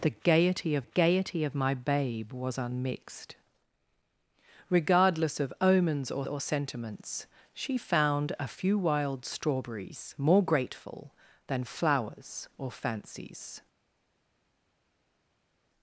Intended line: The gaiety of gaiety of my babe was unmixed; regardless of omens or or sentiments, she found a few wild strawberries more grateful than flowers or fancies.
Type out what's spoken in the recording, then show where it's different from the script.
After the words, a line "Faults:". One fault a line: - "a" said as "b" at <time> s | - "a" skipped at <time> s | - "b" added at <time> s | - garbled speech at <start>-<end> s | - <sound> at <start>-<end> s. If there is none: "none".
The gaiety of gaiety of my babe was unmixed; regardless of omens or or sentiments, she found a few wild strawberries more grateful than flowers or fancies.
Faults:
none